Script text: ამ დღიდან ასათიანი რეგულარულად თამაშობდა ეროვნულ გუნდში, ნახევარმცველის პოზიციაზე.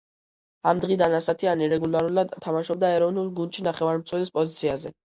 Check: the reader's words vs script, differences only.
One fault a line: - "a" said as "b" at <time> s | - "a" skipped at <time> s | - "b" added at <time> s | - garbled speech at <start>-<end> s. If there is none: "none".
none